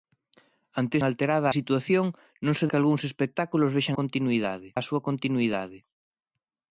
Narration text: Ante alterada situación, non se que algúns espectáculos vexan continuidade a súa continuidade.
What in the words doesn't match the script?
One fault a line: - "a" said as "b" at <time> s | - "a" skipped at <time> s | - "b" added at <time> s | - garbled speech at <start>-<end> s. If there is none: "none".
none